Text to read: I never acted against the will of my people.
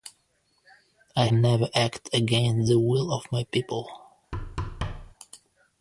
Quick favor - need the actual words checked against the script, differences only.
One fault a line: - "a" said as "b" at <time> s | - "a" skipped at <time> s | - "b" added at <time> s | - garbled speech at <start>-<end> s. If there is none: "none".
none